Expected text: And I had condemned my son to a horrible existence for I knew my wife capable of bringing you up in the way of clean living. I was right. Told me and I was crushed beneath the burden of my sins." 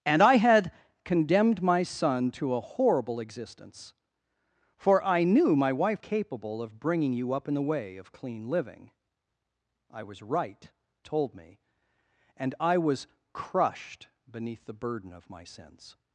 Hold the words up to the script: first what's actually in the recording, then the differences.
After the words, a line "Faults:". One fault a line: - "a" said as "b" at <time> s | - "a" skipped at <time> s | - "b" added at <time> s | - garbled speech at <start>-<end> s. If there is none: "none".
And I had condemned my son to a horrible existence for I knew my wife capable of bringing you up in the way of clean living. I was right. Told me and I was crushed beneath the burden of my sins."
Faults:
none